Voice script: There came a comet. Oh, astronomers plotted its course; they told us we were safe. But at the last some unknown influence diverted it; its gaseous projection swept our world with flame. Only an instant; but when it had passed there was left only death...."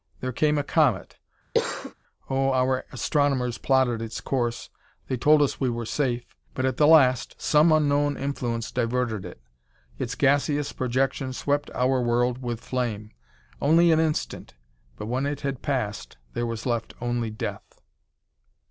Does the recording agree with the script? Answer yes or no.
no